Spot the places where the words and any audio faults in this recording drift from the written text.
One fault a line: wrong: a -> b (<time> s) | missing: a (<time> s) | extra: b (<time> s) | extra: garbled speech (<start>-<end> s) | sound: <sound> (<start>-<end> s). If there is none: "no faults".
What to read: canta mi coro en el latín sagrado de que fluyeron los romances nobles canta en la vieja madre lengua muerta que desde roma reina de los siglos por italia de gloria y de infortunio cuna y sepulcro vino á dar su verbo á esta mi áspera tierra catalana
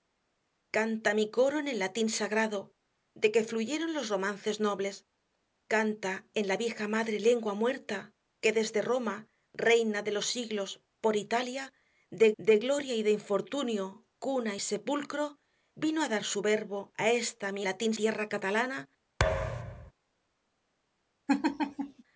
extra: de (12.4 s)
wrong: áspera -> latín (17.6 s)
sound: thud (19.2-19.9 s)
sound: laugh (21.3-22.0 s)